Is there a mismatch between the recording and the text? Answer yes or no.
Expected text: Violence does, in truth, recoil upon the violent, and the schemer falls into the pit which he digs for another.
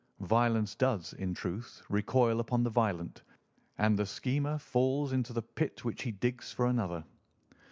no